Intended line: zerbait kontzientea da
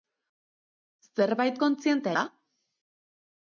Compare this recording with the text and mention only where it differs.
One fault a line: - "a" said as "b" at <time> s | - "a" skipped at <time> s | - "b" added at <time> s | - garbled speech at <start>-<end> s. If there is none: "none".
none